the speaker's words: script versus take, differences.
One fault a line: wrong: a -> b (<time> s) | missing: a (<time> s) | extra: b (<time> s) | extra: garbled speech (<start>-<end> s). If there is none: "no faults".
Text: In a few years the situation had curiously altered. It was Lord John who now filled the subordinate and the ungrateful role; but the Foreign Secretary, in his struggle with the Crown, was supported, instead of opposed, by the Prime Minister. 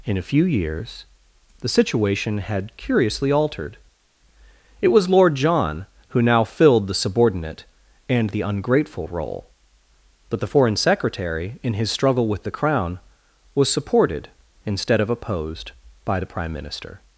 no faults